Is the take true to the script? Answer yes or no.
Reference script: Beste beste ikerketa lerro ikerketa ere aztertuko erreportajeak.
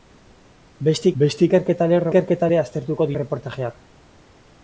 yes